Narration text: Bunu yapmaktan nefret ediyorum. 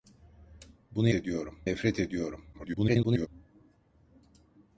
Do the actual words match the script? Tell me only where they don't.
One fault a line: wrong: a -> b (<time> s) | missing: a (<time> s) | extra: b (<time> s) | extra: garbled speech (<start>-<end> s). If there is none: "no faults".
wrong: yapmaktan -> ediyorum (1.1 s)
extra: garbled speech (2.5-3.3 s)